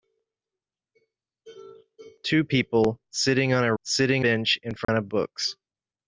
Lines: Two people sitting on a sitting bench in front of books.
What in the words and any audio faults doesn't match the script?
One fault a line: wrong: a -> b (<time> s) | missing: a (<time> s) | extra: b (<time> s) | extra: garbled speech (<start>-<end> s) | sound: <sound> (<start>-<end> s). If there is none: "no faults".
sound: dropout (4.8-4.9 s)